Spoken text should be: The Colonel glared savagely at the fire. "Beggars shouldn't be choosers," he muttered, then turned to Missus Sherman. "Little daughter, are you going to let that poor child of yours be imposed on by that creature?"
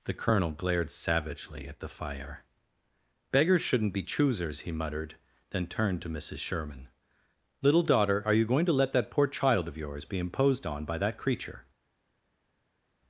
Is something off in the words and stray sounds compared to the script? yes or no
no